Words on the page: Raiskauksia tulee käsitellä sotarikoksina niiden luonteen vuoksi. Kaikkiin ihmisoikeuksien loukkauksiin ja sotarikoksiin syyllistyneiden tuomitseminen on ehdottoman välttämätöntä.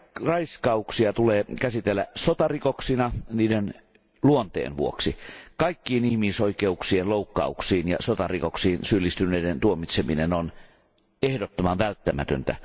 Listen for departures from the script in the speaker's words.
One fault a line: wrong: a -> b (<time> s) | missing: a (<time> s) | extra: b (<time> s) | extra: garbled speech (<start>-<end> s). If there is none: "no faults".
no faults